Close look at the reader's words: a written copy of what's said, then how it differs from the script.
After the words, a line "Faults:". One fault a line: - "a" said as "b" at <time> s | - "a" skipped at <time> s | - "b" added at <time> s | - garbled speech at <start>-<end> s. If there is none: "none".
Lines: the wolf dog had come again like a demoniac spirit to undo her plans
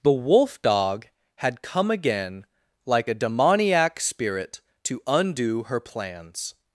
the wolf dog had come again like a demoniac spirit to undo her plans
Faults:
none